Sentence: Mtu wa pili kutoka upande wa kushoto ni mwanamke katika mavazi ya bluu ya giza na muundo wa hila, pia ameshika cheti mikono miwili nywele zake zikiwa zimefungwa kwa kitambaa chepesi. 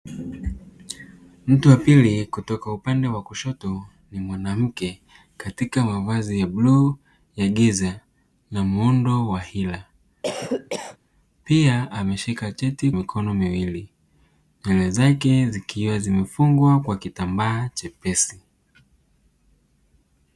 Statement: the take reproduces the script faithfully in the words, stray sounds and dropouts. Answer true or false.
false